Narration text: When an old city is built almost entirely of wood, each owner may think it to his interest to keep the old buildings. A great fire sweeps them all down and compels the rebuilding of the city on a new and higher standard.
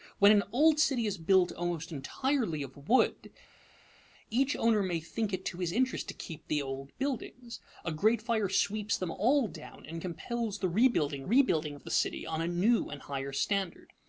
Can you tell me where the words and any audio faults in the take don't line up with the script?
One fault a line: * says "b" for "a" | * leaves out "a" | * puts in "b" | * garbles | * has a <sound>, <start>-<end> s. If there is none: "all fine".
* puts in "rebuilding"